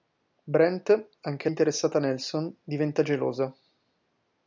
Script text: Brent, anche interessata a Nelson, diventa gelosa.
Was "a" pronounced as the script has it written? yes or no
yes